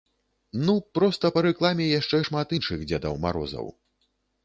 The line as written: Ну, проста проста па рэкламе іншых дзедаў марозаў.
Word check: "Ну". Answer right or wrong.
right